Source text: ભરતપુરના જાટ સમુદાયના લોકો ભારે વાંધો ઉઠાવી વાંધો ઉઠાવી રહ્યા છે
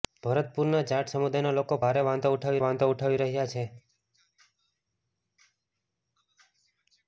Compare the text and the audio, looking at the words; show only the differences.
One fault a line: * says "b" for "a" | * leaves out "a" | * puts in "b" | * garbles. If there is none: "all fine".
all fine